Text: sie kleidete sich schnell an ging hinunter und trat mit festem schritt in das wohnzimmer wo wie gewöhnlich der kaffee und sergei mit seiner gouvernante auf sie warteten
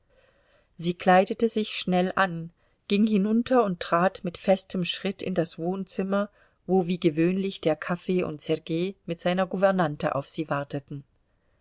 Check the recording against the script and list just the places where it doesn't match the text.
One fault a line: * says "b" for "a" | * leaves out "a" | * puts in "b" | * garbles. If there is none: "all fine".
all fine